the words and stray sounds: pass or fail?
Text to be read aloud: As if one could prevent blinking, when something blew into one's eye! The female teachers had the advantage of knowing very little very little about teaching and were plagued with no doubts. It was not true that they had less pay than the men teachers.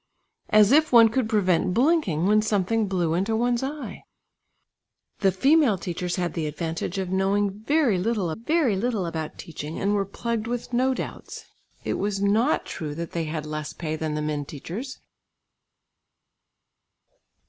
pass